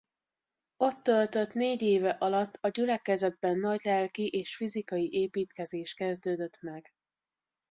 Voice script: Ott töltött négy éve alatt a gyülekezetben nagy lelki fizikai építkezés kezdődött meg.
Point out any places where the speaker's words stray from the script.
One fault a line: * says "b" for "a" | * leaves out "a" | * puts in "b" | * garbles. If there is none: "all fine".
* puts in "és"